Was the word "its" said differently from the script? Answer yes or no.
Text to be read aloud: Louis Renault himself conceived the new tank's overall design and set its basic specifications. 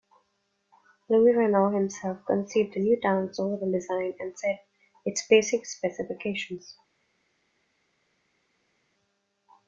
no